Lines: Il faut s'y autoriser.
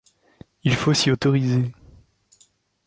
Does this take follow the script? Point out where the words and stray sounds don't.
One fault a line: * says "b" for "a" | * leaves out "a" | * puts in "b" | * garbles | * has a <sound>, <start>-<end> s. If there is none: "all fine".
all fine